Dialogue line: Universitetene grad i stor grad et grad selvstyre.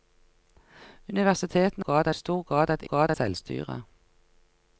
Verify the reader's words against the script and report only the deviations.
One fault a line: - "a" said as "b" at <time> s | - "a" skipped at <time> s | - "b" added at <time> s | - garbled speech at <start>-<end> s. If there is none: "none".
none